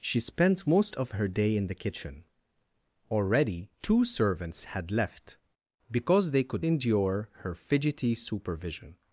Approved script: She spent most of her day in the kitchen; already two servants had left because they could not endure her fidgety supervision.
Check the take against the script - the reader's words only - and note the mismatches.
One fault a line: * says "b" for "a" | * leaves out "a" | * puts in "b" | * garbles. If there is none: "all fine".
* leaves out "not"